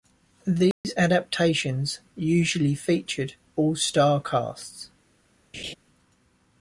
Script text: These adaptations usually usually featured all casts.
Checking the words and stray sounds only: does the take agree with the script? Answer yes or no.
no